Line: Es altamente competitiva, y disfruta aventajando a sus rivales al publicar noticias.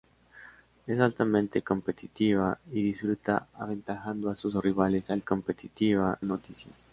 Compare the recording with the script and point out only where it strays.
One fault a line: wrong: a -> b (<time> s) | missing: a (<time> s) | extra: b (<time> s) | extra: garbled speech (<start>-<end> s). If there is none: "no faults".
wrong: publicar -> competitiva (5.2 s)